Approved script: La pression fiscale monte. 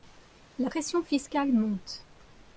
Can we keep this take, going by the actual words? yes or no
yes